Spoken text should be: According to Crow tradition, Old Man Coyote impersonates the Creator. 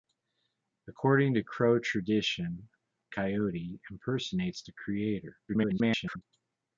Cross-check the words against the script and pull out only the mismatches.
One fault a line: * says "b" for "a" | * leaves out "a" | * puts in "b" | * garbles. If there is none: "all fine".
* leaves out "Old Man"
* garbles